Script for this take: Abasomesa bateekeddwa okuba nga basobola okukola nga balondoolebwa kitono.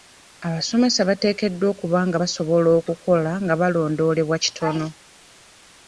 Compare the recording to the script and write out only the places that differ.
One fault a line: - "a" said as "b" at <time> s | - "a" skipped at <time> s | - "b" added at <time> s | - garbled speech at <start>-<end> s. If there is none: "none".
none